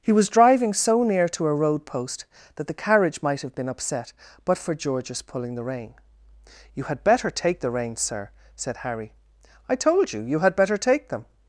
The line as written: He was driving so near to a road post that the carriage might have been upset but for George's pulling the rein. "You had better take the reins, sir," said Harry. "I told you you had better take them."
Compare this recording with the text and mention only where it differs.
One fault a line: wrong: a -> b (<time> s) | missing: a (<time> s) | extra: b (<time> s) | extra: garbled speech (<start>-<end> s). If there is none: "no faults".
no faults